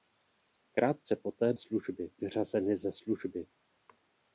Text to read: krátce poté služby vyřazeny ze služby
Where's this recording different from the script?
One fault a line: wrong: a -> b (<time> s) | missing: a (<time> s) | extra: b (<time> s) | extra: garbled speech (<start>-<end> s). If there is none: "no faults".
no faults